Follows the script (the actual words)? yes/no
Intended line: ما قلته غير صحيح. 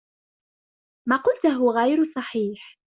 yes